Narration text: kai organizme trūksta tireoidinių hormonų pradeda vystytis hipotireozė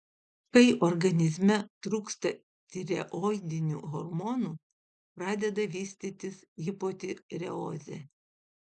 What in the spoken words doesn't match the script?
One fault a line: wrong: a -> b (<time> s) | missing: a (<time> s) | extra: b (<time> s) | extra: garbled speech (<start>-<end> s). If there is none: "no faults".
no faults